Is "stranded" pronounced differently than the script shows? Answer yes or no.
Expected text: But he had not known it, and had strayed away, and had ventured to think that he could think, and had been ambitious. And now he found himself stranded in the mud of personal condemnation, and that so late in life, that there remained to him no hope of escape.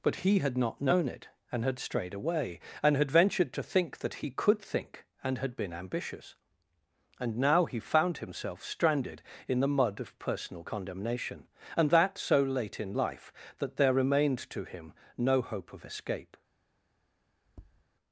no